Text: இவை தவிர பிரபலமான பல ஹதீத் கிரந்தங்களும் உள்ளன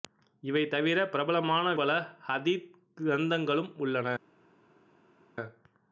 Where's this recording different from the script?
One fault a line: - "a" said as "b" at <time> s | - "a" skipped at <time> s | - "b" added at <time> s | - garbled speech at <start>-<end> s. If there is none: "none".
none